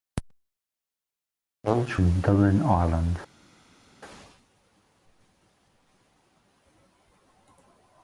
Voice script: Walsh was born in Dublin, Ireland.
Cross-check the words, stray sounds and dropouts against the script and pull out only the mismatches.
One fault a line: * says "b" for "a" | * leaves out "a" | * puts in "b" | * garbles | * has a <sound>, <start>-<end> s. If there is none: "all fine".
* leaves out "was born"